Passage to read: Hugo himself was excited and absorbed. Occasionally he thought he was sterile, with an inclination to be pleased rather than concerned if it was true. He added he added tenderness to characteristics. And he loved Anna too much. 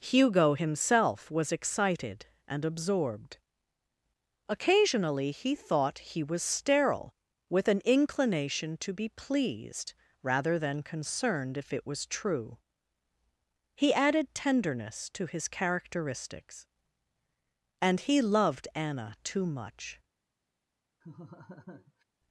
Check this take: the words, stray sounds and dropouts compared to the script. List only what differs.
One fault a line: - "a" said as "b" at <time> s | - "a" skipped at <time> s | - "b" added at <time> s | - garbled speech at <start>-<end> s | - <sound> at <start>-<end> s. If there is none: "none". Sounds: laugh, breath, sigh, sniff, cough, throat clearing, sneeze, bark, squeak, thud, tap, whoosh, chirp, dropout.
- "he added" skipped at 14.3 s
- "his" added at 15.2 s
- laugh at 21.0-22.0 s